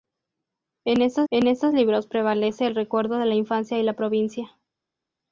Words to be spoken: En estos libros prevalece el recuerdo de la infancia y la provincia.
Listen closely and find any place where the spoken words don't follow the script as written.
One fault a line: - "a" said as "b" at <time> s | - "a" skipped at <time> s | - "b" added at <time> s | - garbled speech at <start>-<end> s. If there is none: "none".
- "en estos" added at 1.3 s